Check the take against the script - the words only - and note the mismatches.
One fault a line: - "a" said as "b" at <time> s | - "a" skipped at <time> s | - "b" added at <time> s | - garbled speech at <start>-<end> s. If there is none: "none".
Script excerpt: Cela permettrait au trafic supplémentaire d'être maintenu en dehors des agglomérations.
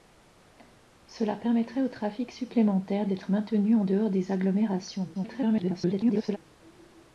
- garbled speech at 5.1-6.4 s